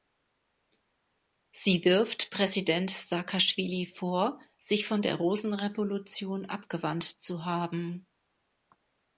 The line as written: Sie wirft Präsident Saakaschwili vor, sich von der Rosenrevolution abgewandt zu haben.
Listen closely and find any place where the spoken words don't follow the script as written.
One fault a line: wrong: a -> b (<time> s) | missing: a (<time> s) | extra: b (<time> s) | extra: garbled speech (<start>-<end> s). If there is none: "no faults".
no faults